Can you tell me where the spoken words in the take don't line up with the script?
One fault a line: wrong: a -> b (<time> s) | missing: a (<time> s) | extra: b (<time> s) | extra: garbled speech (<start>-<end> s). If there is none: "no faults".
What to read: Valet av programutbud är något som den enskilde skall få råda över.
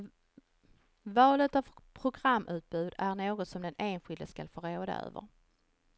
no faults